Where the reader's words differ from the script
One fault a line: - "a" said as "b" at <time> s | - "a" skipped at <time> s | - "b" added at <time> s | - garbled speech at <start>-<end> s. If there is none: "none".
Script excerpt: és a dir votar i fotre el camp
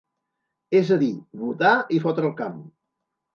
none